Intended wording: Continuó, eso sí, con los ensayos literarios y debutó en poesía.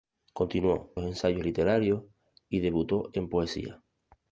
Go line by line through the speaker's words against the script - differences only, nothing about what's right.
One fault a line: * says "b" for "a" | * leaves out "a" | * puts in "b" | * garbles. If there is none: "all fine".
* leaves out "eso sí con"